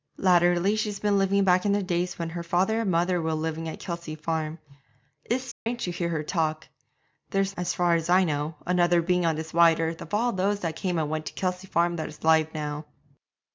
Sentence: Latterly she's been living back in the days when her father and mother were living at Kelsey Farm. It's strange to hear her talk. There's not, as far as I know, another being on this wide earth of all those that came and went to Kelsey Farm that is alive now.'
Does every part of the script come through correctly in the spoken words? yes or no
no